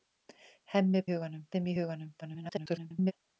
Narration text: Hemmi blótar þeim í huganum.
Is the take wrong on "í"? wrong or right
right